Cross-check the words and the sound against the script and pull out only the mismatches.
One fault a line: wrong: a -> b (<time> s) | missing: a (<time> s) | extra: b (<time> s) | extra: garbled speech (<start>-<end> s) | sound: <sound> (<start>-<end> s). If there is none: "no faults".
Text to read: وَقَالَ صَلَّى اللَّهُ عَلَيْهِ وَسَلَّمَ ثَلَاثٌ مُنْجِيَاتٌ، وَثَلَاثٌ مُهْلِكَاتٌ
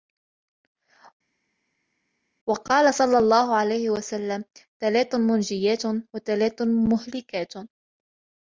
no faults